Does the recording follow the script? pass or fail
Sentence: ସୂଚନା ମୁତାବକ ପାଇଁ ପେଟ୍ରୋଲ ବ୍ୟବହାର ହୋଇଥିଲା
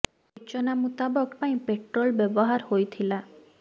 pass